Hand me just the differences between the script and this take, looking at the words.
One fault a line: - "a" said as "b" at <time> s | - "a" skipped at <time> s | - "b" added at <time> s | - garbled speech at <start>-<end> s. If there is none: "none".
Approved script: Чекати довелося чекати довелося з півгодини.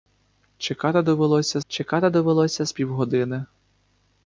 none